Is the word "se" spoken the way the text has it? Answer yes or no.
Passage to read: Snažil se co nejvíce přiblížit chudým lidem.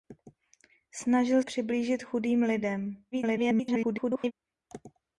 no